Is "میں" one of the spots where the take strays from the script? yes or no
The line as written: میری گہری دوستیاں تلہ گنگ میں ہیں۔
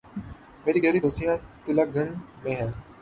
no